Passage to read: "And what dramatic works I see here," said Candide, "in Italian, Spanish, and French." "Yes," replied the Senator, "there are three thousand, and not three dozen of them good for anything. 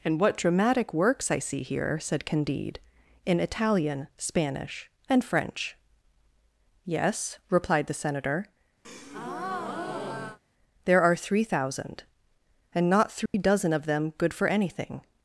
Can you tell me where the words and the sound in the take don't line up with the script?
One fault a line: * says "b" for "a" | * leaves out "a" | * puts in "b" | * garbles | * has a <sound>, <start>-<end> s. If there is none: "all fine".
* has a breath, 8.8-10.4 s
* has a dropout, 13.3-13.3 s